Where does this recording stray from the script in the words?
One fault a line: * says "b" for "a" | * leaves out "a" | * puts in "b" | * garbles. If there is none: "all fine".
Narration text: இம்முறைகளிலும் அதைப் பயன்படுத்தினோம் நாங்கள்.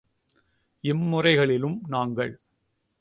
* leaves out "அதைப் பயன்படுத்தினோம்"